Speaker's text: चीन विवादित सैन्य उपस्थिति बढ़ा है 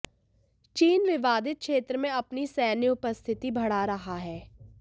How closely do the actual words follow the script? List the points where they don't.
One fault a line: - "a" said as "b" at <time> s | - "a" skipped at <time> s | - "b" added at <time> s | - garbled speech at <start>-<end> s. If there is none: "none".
- "क्षेत्र में अपनी" added at 1.6 s
- "रहा" added at 3.9 s